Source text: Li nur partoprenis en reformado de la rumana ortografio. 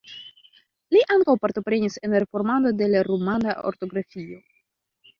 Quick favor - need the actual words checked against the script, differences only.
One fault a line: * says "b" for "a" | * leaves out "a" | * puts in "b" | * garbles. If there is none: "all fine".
* says "ankaŭ" for "nur"